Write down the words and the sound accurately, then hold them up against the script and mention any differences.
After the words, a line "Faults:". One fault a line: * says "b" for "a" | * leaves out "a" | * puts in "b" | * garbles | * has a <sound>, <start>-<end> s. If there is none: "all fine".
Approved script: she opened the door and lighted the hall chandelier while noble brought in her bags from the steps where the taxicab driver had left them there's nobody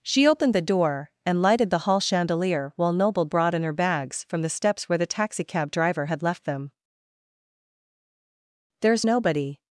she opened the door and lighted the hall chandelier while noble brought in her bags from the steps where the taxicab driver had left them there's nobody
Faults:
all fine